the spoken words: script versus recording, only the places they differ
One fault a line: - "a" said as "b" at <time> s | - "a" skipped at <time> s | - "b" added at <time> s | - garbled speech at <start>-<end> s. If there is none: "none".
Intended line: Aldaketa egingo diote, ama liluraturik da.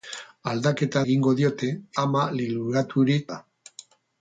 none